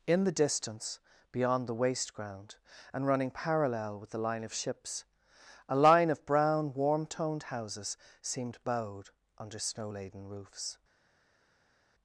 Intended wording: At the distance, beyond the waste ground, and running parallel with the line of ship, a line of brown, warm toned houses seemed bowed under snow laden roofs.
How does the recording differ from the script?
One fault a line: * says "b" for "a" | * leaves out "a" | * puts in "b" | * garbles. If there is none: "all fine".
* says "In" for "At"
* says "ships" for "ship"